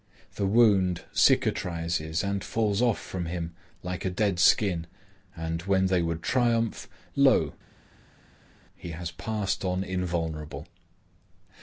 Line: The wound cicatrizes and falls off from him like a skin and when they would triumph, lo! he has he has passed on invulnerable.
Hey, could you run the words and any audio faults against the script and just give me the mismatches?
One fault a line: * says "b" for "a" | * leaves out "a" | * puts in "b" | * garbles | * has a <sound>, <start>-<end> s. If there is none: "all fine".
* puts in "dead"
* leaves out "he has"